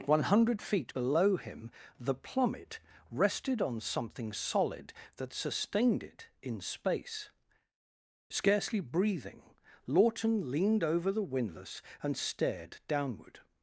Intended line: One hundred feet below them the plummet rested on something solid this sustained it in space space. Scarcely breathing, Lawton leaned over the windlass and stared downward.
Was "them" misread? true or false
true